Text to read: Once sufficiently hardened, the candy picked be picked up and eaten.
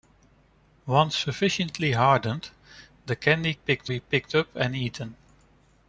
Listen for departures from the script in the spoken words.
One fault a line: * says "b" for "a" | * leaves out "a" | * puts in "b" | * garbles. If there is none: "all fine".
all fine